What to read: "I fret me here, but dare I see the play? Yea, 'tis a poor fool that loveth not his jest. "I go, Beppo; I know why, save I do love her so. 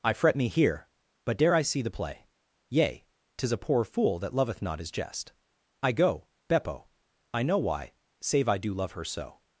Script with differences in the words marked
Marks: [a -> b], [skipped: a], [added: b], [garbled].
"I fret me here, but dare I see the play? Yea, 'tis a poor fool that loveth not his jest. "I go, Beppo; I know why, save I do love her so.